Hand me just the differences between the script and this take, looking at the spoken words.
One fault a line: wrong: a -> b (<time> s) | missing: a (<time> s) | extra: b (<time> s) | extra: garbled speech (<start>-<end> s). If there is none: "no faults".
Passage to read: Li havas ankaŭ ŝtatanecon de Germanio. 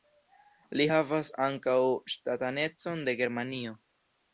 no faults